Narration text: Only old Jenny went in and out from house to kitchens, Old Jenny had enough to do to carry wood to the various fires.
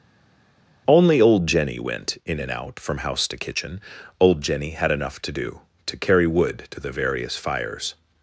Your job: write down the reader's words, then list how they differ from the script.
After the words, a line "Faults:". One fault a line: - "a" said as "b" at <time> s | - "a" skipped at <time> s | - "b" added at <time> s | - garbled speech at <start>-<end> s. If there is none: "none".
Only old Jenny went in and out from house to kitchen, Old Jenny had enough to do to carry wood to the various fires.
Faults:
- "kitchens" said as "kitchen" at 3.4 s